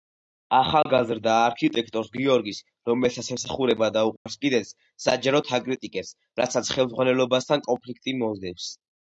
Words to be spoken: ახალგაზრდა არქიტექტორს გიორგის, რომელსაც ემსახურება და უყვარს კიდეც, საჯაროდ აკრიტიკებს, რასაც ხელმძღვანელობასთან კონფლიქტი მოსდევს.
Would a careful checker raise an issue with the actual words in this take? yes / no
no